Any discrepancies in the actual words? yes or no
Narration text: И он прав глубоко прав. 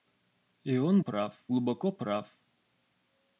no